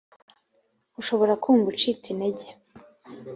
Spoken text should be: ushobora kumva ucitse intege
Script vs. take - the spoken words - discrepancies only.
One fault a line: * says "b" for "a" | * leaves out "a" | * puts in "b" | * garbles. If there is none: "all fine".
all fine